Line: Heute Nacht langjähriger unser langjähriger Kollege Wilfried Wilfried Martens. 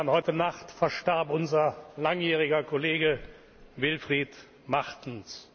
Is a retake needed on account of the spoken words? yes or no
yes